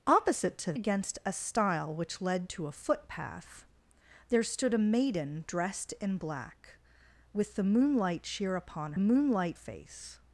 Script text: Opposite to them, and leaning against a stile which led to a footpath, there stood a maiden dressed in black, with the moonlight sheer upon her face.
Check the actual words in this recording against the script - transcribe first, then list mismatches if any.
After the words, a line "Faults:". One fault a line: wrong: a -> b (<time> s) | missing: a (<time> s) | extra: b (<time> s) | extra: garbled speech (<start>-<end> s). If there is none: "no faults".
Opposite to against a stile which led to a footpath, there stood a maiden dressed in black, with the moonlight sheer upon moonlight face.
Faults:
missing: them and leaning (0.7 s)
wrong: her -> moonlight (9.0 s)